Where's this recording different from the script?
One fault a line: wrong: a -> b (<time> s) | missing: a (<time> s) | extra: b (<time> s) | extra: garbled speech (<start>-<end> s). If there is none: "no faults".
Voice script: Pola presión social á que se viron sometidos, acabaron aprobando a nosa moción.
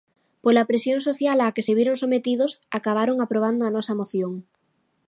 no faults